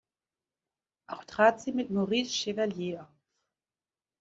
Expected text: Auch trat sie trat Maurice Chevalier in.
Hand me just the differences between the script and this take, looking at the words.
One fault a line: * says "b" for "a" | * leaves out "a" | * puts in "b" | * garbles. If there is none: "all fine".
* says "mit" for "trat"
* says "auf" for "in"